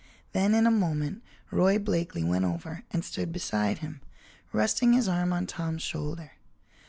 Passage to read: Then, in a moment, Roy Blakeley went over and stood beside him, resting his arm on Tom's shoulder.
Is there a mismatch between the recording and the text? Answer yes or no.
no